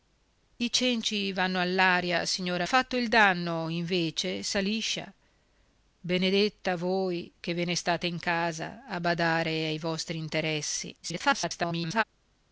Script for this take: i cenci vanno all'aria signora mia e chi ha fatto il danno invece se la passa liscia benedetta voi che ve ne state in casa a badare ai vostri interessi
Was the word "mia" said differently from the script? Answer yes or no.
yes